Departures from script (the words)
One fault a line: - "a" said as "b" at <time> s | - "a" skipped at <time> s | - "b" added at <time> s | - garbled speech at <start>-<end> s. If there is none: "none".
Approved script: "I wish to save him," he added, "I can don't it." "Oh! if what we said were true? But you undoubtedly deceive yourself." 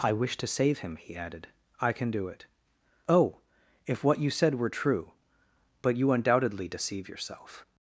- "don't" said as "do" at 2.1 s
- "we" said as "you" at 4.2 s